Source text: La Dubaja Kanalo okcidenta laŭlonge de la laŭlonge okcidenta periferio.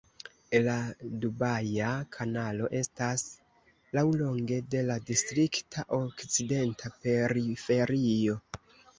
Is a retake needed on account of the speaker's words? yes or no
yes